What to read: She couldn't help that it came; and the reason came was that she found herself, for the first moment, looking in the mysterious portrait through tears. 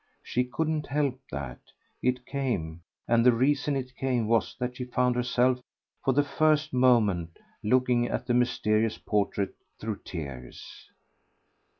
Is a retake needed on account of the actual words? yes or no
yes